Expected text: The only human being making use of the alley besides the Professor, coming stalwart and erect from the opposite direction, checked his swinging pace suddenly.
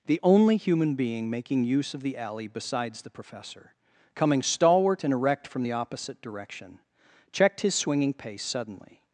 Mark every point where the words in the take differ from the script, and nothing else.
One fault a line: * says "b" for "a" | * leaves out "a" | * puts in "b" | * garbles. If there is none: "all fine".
all fine